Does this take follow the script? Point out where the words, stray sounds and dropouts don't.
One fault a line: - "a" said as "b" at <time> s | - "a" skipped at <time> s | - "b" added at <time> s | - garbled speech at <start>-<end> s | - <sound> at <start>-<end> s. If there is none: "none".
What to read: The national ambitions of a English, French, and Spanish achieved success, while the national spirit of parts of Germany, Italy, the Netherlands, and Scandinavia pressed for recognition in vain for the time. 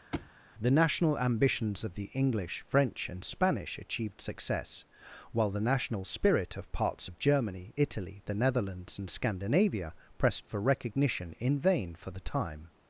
- thud at 0.1-0.3 s
- "a" said as "the" at 1.9 s